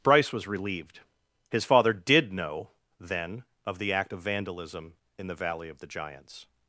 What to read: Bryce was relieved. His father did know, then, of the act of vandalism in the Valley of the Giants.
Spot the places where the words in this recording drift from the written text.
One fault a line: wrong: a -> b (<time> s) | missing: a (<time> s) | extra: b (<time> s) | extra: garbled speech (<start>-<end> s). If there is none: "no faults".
no faults